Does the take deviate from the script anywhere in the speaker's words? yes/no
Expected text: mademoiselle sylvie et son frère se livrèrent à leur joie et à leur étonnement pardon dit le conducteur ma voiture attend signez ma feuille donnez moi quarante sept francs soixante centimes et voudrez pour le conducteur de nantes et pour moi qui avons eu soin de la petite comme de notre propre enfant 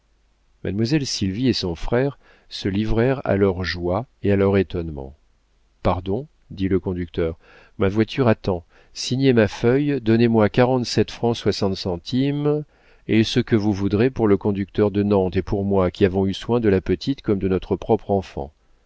yes